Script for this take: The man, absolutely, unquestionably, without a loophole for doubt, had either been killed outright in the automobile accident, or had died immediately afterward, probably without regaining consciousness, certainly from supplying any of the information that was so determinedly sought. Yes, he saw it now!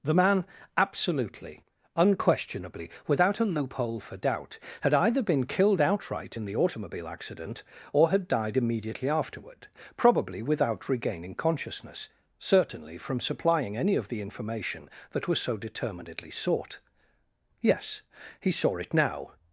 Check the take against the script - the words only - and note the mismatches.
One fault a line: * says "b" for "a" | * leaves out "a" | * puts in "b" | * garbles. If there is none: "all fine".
all fine